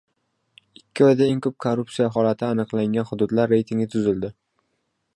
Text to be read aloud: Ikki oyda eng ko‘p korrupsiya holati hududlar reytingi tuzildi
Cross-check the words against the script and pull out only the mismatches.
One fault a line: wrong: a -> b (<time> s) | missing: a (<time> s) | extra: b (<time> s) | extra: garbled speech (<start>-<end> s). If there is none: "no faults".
extra: aniqlangan (2.5 s)